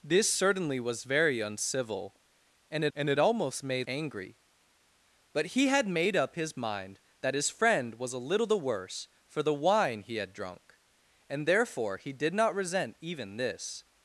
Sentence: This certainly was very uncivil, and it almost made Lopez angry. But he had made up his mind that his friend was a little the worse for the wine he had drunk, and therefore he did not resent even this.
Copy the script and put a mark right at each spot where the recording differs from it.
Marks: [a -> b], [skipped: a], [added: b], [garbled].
This certainly was very uncivil, and it [added: and it] almost made [skipped: Lopez] angry. But he had made up his mind that his friend was a little the worse for the wine he had drunk, and therefore he did not resent even this.